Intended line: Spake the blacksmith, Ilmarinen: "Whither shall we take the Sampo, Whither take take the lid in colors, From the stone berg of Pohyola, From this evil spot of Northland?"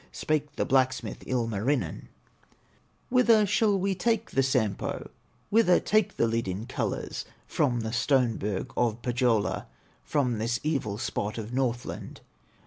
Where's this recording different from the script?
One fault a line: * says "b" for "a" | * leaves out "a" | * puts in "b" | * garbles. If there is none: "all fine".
* leaves out "take"